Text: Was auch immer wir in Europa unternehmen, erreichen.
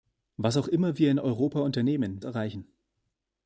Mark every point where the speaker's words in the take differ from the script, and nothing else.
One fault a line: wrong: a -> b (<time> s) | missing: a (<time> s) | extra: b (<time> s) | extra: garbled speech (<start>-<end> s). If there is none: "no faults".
no faults